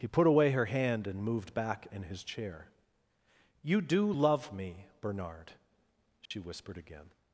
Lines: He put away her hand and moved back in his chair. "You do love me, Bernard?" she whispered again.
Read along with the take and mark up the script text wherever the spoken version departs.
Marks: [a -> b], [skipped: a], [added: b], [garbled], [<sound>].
He put away her hand and moved back in his chair. "You do love me, Bernard?" she [dropout] whispered again.